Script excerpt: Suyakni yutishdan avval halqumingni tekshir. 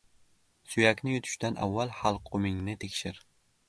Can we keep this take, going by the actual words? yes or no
yes